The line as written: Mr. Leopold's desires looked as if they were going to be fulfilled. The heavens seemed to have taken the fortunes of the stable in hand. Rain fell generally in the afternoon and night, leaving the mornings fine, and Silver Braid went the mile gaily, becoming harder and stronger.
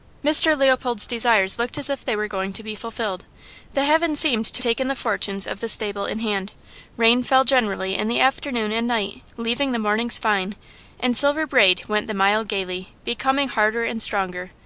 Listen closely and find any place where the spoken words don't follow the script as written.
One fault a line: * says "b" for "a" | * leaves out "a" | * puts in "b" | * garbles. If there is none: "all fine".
* leaves out "have"